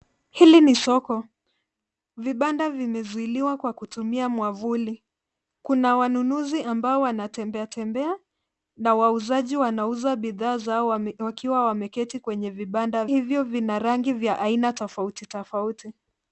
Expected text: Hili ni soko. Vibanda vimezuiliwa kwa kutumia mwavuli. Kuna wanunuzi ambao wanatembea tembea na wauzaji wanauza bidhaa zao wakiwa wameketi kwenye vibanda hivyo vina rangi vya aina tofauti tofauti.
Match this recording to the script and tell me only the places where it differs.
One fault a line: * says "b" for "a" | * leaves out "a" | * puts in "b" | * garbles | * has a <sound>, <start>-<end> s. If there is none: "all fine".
all fine